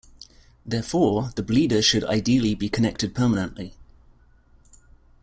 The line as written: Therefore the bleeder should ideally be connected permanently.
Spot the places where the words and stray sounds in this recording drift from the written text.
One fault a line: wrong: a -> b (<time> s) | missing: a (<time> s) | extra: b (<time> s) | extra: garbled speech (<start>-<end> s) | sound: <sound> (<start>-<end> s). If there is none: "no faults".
no faults